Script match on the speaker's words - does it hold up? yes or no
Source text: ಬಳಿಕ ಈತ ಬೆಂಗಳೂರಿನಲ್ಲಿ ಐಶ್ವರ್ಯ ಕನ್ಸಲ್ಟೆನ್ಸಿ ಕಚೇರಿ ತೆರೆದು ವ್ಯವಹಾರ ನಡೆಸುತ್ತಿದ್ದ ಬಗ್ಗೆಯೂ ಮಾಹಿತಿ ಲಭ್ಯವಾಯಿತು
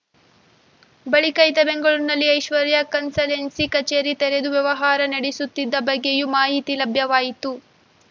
yes